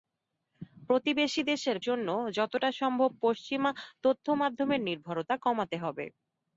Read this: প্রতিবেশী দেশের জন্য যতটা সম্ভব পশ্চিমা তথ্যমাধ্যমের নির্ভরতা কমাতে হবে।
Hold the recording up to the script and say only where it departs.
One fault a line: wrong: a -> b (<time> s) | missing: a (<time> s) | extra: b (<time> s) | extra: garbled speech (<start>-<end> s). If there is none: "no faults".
no faults